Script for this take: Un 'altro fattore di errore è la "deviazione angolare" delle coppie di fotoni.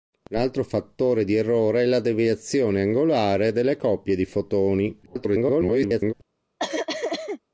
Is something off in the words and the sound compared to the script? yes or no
yes